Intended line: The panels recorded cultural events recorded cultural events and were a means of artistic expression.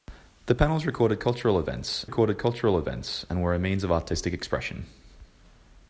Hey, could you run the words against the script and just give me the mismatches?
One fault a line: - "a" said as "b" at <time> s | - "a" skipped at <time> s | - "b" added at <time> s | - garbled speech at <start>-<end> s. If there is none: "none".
none